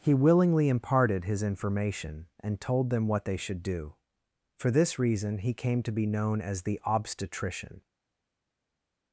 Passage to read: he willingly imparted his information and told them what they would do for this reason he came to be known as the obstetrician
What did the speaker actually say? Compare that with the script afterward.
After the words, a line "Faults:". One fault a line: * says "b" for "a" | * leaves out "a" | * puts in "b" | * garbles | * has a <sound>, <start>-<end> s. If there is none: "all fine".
he willingly imparted his information and told them what they should do for this reason he came to be known as the obstetrician
Faults:
* says "should" for "would"